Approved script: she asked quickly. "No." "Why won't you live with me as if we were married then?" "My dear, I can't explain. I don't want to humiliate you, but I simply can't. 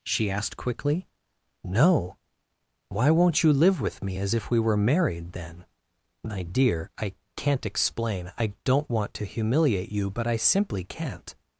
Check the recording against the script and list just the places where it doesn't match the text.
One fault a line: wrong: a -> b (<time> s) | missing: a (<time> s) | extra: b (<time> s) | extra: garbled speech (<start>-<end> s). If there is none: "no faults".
no faults